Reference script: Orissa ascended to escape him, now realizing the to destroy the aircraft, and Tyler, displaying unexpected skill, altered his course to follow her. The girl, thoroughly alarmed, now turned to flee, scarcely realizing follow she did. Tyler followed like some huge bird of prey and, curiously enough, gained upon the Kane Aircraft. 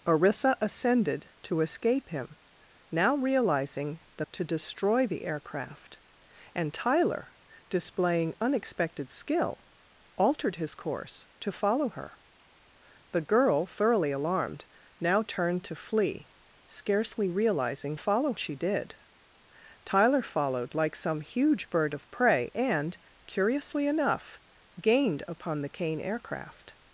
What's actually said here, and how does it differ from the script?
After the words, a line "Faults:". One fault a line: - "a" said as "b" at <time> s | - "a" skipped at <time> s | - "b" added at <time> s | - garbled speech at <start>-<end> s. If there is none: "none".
Orissa ascended to escape him, now realizing the to destroy the aircraft, and Tyler, displaying unexpected skill, altered his course to follow her. The girl, thoroughly alarmed, now turned to flee, scarcely realizing follow she did. Tyler followed like some huge bird of prey and, curiously enough, gained upon the Kane Aircraft.
Faults:
none